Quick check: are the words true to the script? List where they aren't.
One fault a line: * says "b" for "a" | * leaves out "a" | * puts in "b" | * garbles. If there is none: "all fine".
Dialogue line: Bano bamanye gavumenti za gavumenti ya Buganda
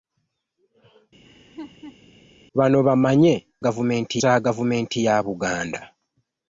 all fine